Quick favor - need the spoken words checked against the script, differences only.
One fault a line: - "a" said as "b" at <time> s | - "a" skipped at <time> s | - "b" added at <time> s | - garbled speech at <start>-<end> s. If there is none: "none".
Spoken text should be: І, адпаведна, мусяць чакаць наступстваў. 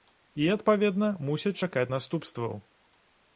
none